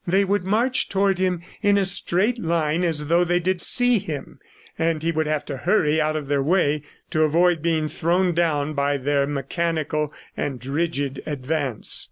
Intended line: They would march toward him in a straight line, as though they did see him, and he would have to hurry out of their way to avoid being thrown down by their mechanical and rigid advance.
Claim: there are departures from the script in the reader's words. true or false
false